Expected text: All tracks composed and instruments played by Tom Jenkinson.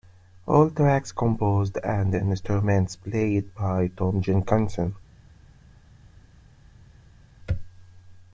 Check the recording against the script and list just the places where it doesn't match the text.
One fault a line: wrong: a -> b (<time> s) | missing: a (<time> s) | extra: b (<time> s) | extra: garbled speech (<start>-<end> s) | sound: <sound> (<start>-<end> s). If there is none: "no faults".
no faults